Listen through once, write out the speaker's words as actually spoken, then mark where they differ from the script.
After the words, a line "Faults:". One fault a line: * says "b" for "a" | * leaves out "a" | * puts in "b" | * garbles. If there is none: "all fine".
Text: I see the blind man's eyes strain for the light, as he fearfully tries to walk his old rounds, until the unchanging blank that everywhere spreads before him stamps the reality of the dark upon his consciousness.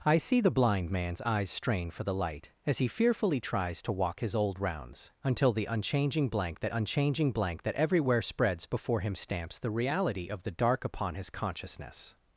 I see the blind man's eyes strain for the light, as he fearfully tries to walk his old rounds, until the unchanging blank that unchanging blank that everywhere spreads before him stamps the reality of the dark upon his consciousness.
Faults:
* puts in "unchanging blank that"